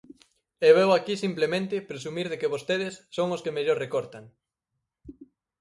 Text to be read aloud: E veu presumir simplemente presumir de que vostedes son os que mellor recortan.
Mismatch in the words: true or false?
true